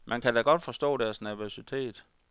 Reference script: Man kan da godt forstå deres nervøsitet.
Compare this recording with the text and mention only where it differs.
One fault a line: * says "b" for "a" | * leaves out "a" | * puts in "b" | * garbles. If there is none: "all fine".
all fine